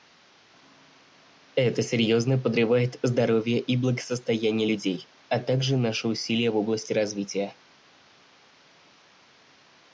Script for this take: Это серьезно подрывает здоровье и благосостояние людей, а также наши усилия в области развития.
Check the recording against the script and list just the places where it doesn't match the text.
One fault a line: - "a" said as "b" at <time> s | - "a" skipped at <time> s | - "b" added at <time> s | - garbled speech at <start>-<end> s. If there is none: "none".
none